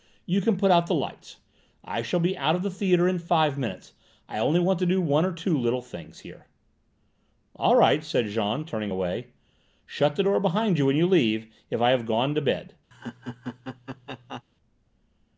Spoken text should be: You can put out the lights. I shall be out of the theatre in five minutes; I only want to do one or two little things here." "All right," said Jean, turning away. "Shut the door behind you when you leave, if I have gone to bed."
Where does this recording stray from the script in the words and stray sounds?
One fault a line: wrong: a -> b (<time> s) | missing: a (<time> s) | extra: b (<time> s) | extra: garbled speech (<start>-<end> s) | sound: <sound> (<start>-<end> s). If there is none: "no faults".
sound: laugh (12.9-14.4 s)